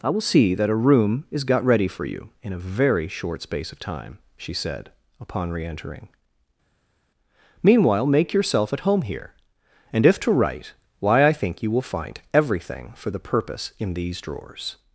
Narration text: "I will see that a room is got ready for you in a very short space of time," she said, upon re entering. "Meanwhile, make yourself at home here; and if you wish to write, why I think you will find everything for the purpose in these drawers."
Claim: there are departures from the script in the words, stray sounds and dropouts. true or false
true